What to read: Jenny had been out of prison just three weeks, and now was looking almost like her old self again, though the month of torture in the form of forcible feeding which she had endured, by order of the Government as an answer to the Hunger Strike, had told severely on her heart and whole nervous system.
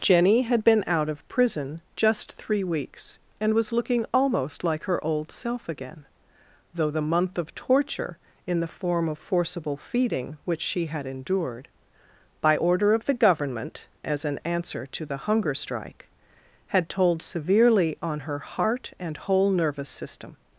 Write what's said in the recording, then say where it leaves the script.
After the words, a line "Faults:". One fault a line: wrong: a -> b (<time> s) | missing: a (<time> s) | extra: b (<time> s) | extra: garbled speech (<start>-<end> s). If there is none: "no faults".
Jenny had been out of prison just three weeks, and was looking almost like her old self again, though the month of torture in the form of forcible feeding which she had endured, by order of the Government as an answer to the Hunger Strike, had told severely on her heart and whole nervous system.
Faults:
missing: now (3.5 s)